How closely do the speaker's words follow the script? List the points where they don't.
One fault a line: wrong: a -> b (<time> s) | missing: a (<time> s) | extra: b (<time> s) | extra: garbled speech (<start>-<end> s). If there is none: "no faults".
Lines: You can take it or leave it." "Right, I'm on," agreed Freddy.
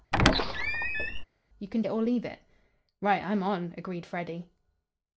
missing: take (1.8 s)